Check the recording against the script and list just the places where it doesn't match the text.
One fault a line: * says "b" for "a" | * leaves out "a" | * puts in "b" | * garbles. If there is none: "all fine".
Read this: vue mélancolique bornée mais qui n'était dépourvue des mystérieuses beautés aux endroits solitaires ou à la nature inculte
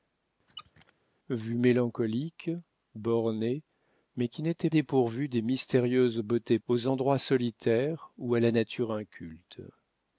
all fine